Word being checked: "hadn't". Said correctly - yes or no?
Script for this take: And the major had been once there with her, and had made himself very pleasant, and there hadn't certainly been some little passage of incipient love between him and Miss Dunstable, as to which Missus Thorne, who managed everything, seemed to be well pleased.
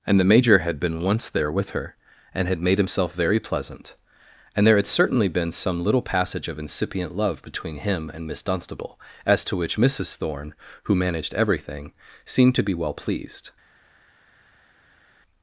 no